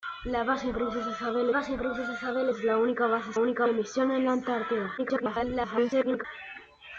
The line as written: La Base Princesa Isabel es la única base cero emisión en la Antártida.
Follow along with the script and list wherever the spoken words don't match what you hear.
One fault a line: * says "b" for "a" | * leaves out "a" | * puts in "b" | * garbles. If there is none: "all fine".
* puts in "Base Princesa Isabel"
* says "única" for "cero"
* garbles